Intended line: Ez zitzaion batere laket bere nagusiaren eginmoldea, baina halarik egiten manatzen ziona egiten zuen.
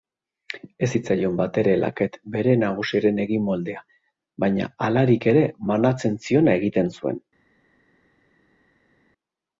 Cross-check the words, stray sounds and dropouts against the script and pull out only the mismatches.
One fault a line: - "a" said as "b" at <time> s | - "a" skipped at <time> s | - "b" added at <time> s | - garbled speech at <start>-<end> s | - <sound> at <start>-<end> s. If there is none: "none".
- "egiten" said as "ere" at 5.3 s